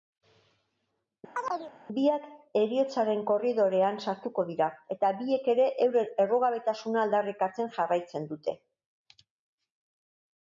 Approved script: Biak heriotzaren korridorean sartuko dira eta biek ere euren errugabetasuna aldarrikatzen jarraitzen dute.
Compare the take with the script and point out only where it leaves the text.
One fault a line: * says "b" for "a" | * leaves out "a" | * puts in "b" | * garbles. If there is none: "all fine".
all fine